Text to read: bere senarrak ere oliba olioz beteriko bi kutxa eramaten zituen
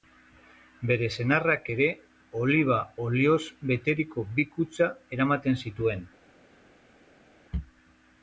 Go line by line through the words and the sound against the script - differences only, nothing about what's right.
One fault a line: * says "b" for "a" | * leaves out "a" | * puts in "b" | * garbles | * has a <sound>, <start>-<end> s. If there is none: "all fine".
all fine